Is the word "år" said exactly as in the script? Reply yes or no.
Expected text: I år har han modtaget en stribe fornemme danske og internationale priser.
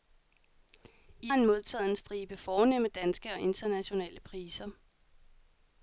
no